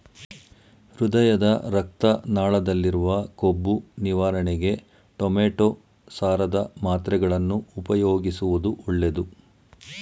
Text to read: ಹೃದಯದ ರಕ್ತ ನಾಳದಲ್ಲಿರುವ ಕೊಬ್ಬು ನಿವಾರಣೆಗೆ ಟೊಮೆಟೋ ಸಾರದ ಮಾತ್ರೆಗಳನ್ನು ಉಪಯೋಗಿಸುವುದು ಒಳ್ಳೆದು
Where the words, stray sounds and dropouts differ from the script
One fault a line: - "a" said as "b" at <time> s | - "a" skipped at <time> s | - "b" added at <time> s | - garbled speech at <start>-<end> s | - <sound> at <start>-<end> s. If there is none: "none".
none